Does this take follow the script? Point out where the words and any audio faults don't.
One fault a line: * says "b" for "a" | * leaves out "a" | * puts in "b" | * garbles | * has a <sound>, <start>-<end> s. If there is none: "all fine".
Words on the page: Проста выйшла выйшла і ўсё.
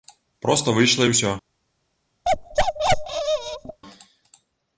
* leaves out "выйшла"
* has a bark, 2.2-3.8 s